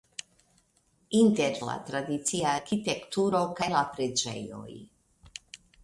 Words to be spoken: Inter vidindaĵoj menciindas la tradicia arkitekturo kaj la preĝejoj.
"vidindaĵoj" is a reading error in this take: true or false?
true